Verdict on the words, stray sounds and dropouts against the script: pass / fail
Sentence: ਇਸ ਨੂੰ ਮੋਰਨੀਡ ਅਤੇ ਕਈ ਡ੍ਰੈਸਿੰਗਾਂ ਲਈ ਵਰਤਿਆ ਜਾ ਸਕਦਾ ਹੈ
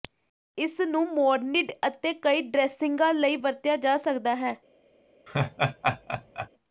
fail